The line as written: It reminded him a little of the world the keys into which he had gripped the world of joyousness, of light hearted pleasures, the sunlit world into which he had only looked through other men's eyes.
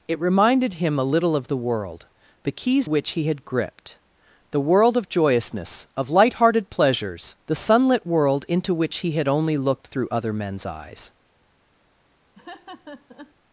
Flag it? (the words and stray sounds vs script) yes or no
yes